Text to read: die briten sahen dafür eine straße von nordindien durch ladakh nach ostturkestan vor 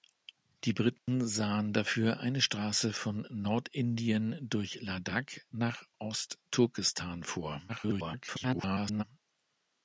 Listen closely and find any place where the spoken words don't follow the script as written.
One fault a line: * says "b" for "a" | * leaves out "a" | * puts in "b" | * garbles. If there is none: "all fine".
* garbles